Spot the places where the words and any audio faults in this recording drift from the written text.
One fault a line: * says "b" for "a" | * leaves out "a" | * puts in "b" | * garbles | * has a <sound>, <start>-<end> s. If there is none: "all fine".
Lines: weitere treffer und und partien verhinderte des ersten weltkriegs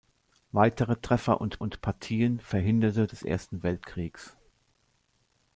all fine